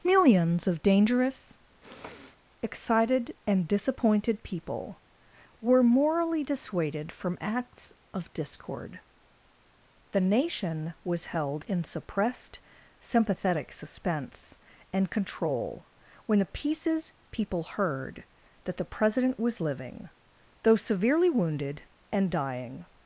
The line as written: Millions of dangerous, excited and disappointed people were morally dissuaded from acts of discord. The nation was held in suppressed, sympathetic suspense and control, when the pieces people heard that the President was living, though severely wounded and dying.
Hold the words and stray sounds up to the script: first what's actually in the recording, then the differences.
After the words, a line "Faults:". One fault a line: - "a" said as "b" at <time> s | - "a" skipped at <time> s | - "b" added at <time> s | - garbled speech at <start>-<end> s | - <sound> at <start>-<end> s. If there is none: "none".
Millions of dangerous, excited and disappointed people were morally dissuaded from acts of discord. The nation was held in suppressed, sympathetic suspense and control, when the pieces people heard that the President was living, though severely wounded and dying.
Faults:
- sniff at 1.8-2.4 s